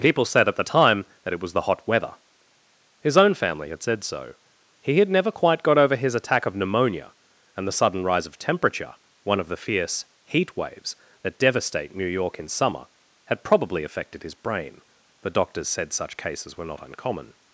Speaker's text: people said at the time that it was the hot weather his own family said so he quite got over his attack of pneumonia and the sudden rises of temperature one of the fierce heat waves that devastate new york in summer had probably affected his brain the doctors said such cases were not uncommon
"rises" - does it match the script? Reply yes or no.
no